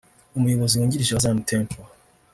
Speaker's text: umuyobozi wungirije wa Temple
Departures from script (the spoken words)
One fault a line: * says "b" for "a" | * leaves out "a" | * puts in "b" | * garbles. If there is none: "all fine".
* puts in "Zion"